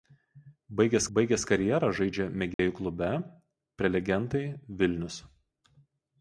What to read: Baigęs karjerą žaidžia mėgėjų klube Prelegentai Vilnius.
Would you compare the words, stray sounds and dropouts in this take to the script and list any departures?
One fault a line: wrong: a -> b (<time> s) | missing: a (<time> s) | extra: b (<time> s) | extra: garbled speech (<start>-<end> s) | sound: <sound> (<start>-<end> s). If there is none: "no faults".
extra: baigęs (1.2 s)
sound: dropout (2.5-2.6 s)